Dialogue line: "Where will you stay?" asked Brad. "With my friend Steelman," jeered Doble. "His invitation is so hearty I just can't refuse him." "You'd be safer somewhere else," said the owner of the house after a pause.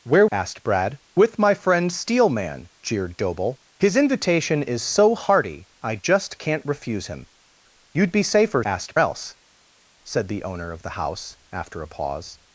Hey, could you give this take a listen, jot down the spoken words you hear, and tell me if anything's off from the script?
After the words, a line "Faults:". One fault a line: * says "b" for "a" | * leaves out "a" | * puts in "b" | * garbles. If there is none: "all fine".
"Where?" asked Brad. "With my friend Steelman," jeered Doble. "His invitation is so hearty I just can't refuse him." "You'd be safer asked else," said the owner of the house after a pause.
Faults:
* leaves out "will you stay"
* says "asked" for "somewhere"